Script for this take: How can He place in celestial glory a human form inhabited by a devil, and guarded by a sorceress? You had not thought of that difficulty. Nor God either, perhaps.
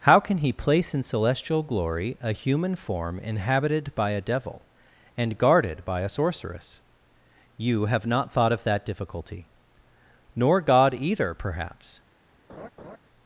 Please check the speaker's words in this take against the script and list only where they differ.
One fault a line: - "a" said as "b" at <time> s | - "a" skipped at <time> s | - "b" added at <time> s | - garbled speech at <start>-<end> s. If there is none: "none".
- "had" said as "have" at 7.9 s